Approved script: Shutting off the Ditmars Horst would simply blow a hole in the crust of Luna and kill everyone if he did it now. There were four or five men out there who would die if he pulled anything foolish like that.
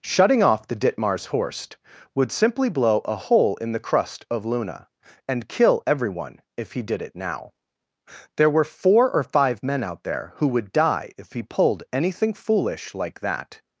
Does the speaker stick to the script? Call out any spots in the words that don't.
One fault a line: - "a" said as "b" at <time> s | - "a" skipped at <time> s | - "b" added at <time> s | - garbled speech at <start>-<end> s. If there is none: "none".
none